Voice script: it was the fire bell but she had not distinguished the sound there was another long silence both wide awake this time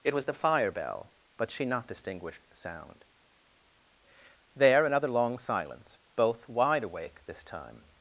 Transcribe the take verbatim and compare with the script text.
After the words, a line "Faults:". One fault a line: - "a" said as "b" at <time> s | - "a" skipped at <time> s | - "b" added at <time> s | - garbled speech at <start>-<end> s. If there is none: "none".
it was the fire bell but she not distinguished the sound there another long silence both wide awake this time
Faults:
- "had" skipped at 1.7 s
- "was" skipped at 4.9 s